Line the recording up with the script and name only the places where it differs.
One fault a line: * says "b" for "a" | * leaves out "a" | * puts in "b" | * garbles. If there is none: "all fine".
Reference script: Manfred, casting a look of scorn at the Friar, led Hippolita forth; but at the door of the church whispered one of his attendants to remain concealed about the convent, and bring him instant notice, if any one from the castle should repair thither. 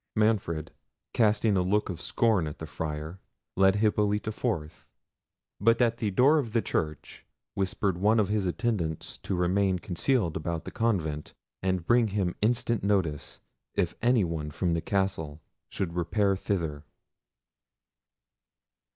all fine